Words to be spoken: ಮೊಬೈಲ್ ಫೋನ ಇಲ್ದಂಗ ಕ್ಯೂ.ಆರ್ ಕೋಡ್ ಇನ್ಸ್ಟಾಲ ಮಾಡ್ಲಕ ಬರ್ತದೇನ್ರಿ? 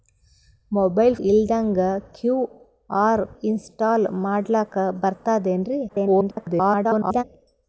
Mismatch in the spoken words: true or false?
true